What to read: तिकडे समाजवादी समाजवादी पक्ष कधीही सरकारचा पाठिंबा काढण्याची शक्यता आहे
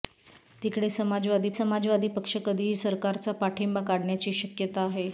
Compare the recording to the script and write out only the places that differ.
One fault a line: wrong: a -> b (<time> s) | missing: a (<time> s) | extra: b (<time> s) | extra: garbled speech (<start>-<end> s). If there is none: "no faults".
no faults